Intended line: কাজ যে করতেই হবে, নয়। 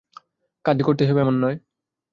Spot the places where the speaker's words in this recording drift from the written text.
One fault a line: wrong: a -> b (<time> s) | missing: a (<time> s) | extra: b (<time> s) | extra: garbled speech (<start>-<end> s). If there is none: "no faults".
extra: এমন (1.2 s)